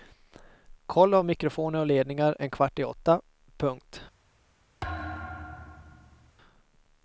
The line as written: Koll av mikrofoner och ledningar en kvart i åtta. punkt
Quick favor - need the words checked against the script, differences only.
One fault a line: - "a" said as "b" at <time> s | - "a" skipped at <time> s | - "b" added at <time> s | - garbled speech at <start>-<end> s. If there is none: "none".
none